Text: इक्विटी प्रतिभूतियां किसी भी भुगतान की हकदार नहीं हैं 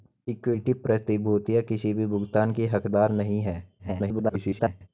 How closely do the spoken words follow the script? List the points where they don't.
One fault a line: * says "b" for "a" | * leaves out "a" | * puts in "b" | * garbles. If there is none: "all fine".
* garbles